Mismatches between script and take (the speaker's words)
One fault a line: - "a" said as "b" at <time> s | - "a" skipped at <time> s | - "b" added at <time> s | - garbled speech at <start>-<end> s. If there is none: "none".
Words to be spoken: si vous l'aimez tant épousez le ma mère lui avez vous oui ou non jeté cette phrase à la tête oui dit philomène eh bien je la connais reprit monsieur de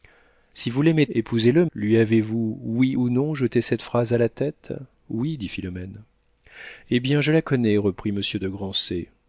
- "tant" skipped at 1.1 s
- "ma mère" skipped at 1.7 s